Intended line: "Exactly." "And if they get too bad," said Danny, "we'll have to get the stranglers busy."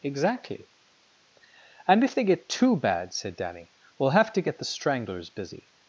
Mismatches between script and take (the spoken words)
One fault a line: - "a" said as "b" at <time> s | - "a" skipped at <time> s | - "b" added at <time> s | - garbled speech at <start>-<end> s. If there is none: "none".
none